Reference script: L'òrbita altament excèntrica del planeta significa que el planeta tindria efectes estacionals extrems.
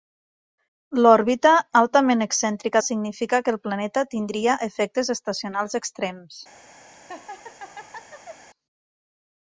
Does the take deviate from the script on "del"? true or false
true